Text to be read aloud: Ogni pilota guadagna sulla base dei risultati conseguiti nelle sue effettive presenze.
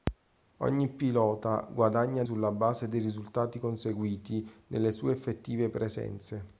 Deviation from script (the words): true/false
false